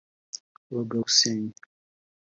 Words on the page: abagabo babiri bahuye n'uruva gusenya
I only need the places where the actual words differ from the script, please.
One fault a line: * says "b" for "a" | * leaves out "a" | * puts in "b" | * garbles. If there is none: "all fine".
* leaves out "babiri bahuye n'uruva"